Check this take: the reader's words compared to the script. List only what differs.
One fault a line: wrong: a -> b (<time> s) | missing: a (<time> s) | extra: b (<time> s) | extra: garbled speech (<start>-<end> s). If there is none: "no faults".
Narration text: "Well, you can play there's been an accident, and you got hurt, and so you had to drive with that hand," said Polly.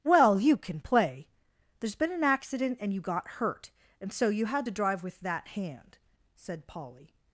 no faults